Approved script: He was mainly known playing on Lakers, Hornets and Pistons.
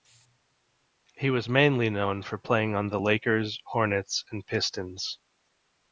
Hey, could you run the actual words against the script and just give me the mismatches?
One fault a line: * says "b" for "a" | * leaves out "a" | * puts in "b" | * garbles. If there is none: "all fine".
* puts in "for"
* puts in "the"